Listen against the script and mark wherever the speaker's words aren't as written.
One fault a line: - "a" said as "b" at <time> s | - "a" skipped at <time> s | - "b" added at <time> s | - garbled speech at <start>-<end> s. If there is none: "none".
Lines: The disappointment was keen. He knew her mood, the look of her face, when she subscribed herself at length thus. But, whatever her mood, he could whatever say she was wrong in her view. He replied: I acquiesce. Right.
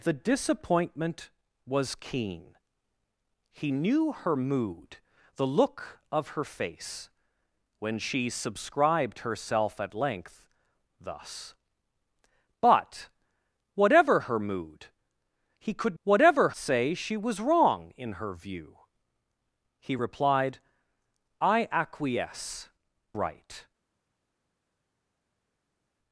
none